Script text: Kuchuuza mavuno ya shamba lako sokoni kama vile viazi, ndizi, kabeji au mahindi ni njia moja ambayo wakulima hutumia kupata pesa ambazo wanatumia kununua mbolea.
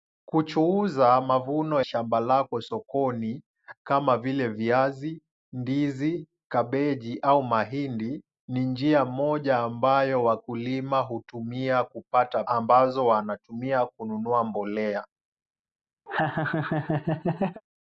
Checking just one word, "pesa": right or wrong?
wrong